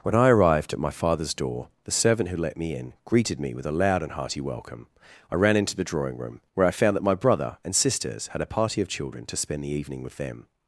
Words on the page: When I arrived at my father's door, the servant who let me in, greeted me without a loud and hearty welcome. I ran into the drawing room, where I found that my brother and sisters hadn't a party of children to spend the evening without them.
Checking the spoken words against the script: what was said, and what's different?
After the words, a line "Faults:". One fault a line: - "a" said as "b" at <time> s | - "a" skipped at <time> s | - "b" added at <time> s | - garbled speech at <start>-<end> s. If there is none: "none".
When I arrived at my father's door, the servant who let me in, greeted me with a loud and hearty welcome. I ran into the drawing room, where I found that my brother and sisters had a party of children to spend the evening with them.
Faults:
- "without" said as "with" at 3.5 s
- "hadn't" said as "had" at 8.3 s
- "without" said as "with" at 10.0 s